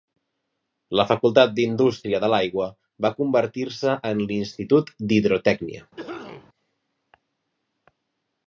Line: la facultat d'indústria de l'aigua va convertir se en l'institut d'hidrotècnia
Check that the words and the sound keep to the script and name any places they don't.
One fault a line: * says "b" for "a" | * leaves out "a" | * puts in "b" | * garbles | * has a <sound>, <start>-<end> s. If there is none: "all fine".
* has a cough, 6.0-6.5 s